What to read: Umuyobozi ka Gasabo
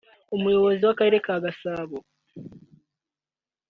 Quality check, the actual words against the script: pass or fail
fail